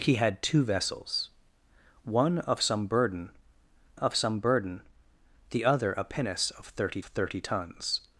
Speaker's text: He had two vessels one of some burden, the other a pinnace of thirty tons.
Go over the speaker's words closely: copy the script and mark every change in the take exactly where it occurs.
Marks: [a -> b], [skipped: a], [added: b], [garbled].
He had two vessels one of some burden, [added: of some burden] the other a pinnace of thirty [added: thirty] tons.